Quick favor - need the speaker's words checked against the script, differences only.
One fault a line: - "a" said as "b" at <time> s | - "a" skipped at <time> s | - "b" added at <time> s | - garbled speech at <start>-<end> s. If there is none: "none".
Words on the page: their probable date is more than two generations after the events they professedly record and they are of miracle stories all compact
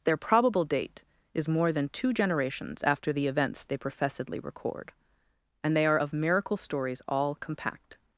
none